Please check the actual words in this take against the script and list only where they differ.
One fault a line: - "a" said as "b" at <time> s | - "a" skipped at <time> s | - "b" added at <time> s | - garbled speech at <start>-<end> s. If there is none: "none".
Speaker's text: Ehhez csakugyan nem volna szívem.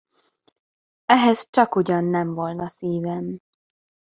none